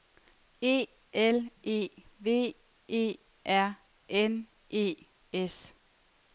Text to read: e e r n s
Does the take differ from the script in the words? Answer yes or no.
yes